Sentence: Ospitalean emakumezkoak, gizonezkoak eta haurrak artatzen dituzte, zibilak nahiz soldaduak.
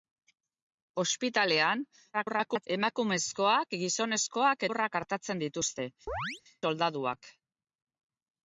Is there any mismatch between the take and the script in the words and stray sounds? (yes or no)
yes